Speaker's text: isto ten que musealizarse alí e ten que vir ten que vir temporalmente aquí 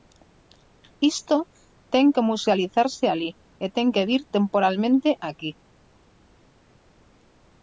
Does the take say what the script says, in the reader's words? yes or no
no